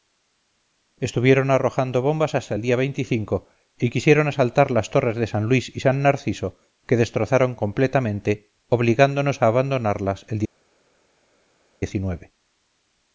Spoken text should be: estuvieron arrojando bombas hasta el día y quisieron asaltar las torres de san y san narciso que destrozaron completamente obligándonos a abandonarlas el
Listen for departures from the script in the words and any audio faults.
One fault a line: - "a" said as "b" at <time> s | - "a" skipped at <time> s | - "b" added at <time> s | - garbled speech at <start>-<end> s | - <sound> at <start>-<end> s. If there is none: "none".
- "luis" added at 5.4 s